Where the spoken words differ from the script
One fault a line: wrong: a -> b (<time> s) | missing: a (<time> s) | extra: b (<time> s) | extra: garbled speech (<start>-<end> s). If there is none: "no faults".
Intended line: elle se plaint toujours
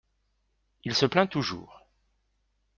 wrong: elle -> il (0.8 s)